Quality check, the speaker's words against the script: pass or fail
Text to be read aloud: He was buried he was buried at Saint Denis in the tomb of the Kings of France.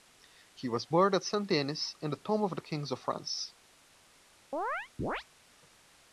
fail